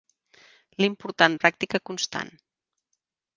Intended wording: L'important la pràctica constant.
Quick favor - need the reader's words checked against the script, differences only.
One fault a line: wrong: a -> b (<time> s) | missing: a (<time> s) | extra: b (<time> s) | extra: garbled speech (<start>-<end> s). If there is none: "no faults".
no faults